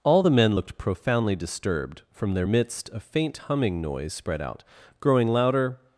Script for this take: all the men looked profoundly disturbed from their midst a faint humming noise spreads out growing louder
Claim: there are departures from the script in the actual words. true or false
true